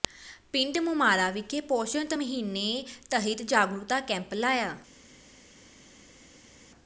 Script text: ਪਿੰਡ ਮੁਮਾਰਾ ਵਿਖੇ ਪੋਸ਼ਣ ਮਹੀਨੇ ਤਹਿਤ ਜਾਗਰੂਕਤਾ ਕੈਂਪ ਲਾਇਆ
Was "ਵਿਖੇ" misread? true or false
false